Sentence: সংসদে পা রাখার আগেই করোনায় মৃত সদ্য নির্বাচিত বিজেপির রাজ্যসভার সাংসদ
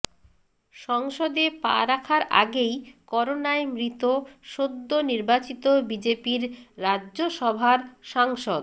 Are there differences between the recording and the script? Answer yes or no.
no